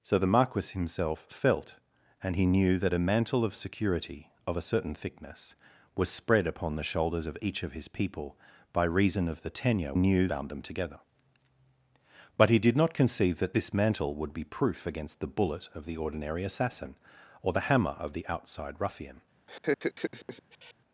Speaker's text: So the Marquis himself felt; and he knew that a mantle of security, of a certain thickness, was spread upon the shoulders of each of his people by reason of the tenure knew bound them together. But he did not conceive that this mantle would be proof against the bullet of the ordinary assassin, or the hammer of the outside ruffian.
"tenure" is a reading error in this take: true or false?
false